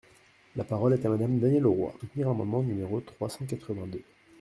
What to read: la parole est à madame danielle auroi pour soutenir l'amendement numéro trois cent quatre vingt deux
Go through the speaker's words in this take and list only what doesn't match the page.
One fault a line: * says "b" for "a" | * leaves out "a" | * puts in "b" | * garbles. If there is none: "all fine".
* leaves out "pour"